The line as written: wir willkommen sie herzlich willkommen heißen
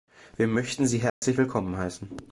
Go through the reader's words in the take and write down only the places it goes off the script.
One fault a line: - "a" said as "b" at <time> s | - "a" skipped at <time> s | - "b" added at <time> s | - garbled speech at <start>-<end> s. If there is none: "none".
- "willkommen" said as "möchten" at 0.5 s